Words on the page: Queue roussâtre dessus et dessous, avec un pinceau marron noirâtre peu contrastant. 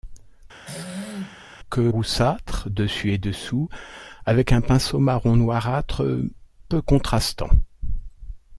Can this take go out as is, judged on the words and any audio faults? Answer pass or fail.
fail